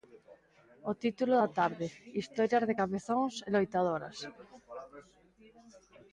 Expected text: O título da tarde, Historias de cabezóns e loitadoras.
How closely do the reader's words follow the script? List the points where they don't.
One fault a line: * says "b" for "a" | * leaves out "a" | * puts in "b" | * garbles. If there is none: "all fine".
all fine